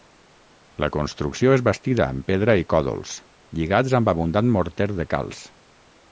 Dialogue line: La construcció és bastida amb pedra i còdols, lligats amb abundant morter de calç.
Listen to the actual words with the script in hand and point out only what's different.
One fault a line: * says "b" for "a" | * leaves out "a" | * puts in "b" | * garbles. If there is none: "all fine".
all fine